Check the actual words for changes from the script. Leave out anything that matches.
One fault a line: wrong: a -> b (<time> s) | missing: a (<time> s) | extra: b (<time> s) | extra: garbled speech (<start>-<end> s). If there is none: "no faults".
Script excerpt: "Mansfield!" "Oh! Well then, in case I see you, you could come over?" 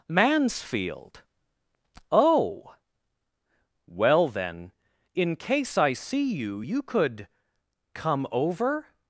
no faults